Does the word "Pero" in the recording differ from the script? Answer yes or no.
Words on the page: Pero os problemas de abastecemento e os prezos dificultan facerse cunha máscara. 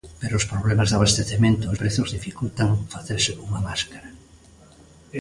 no